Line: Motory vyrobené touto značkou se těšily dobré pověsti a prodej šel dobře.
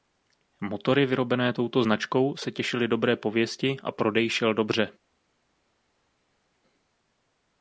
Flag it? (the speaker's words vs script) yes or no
no